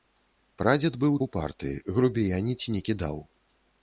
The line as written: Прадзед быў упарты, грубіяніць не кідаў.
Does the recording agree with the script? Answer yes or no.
yes